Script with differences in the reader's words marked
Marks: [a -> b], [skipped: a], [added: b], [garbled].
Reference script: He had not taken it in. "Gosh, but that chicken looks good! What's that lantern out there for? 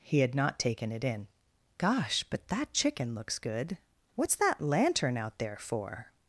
He had not taken it in. "Gosh, but that chicken looks good! What's that lantern out there for?